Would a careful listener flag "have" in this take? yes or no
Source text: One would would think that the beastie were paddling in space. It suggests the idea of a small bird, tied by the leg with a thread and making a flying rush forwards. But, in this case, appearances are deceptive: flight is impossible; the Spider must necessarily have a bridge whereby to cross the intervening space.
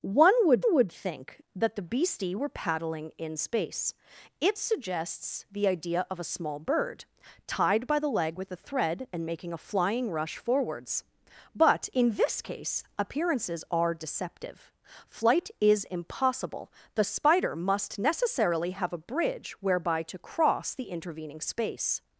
no